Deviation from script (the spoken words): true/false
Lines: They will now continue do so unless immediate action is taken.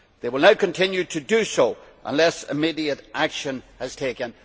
true